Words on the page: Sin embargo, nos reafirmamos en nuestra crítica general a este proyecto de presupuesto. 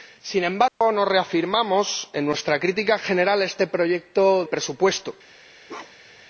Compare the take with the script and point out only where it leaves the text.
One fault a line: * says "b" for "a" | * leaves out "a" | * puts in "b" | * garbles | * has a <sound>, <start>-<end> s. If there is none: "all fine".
* has a dropout, 0.7-0.8 s
* leaves out "de"
* has a bark, 5.7-6.3 s